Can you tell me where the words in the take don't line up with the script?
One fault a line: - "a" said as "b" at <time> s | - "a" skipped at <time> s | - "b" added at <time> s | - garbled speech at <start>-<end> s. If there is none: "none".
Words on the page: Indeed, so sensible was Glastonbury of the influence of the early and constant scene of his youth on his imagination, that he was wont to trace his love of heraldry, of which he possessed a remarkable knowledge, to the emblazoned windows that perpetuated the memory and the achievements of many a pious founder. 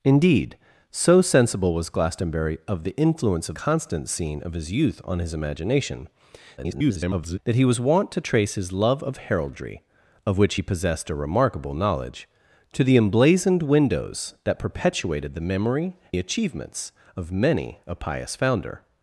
- "the early and" skipped at 3.5 s
- garbled speech at 6.6-7.4 s
- "and" skipped at 16.0 s